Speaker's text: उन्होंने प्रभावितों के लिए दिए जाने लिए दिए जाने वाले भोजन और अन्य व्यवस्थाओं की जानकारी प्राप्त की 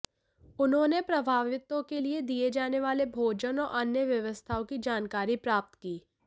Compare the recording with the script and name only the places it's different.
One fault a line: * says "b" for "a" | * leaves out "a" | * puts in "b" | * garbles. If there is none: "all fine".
* leaves out "लिए दिए जाने"